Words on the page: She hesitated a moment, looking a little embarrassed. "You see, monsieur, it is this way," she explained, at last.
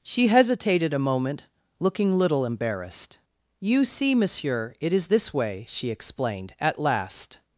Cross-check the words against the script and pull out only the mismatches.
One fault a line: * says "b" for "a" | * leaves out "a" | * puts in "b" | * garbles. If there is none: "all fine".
* leaves out "a"